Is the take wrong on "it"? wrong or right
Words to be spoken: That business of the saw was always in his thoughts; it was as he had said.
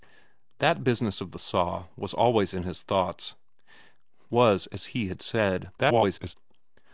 wrong